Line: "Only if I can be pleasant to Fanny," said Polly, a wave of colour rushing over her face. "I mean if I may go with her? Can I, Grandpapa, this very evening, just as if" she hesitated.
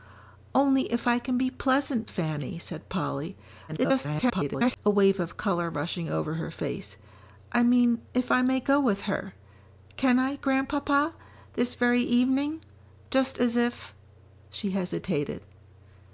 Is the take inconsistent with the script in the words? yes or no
yes